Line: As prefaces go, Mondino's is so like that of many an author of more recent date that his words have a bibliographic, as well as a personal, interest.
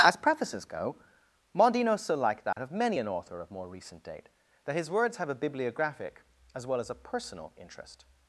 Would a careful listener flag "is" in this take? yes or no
yes